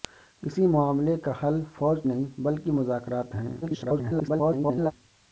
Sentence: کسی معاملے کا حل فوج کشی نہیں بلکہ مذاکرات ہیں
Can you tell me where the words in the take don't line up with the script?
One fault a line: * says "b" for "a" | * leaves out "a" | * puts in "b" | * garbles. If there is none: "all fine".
* leaves out "کشی"
* garbles